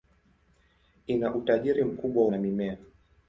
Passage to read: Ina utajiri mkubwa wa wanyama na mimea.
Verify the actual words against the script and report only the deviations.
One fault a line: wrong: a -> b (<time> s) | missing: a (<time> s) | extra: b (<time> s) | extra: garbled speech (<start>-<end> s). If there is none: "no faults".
missing: wa wanyama (2.3 s)